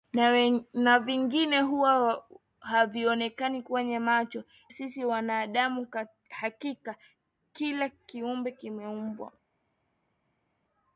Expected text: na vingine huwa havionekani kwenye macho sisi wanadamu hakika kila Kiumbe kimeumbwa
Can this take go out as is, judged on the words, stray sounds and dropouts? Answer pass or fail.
pass